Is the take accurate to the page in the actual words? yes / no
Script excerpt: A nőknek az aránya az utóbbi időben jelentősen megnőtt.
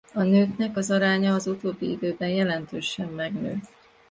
yes